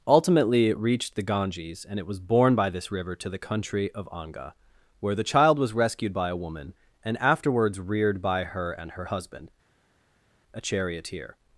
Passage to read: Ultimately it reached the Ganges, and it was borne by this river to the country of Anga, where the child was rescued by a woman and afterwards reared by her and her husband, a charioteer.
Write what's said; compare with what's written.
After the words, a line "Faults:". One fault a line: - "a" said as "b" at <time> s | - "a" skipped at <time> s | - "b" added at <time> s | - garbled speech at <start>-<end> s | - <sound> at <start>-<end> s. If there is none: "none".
Ultimately it reached the Ganges, and it was borne by this river to the country of Anga, where the child was rescued by a woman and afterwards reared by her and her husband, a charioteer.
Faults:
none